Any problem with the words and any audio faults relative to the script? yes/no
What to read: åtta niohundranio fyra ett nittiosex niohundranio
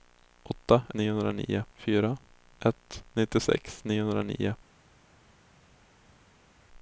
no